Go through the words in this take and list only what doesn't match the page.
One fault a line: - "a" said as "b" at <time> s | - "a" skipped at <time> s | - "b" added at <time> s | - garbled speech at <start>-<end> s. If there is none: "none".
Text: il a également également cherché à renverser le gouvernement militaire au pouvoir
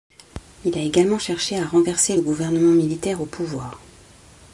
- "également" skipped at 1.2 s